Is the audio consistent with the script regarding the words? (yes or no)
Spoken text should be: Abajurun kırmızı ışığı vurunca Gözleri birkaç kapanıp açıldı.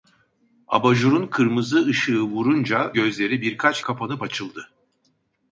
yes